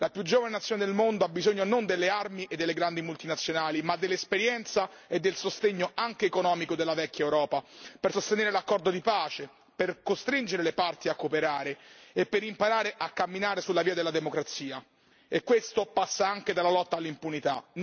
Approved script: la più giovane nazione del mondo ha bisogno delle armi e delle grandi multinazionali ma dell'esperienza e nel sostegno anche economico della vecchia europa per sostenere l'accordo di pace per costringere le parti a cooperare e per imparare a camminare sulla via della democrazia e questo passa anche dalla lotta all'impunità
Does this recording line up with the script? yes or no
no